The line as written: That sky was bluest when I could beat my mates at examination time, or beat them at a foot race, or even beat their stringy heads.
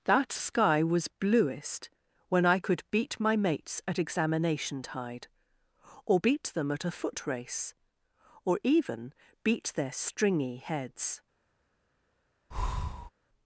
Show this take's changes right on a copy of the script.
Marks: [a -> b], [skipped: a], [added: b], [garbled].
That sky was bluest when I could beat my mates at examination [time, -> tide] or beat them at a foot race, or even beat their stringy heads.